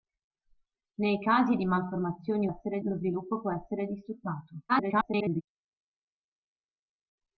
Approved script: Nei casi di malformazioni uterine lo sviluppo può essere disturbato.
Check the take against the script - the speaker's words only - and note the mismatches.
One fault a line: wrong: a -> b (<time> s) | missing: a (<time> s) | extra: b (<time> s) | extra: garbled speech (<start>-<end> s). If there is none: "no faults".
wrong: uterine -> essere (2.5 s)
extra: garbled speech (4.7-5.4 s)